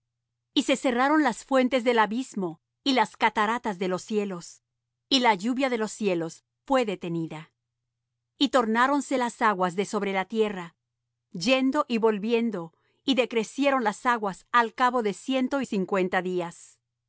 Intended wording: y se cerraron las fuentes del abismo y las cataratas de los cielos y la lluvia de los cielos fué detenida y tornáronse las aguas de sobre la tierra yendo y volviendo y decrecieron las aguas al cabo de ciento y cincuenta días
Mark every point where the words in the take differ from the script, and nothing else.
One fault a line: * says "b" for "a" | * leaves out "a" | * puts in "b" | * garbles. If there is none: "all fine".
all fine